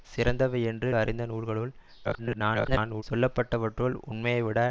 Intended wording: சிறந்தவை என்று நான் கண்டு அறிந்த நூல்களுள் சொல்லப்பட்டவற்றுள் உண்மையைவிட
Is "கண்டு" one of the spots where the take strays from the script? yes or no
yes